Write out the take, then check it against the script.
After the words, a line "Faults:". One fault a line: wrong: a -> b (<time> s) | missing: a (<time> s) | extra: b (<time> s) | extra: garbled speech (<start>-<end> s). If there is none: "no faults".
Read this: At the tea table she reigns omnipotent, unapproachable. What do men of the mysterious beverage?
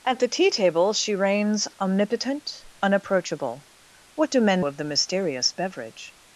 At the tea table she reigns omnipotent, unapproachable. What do men of the mysterious beverage?
Faults:
no faults